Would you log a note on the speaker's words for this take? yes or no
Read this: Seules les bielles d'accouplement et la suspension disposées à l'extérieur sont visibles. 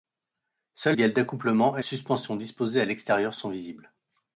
yes